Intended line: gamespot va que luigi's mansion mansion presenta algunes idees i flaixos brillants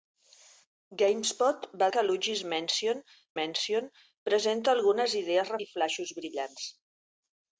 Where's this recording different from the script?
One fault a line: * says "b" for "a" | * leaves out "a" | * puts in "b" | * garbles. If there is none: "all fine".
all fine